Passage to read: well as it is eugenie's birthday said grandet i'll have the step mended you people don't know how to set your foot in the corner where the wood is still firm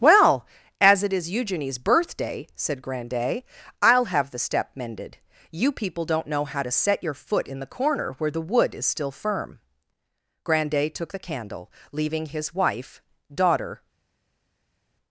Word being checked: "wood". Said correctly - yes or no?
yes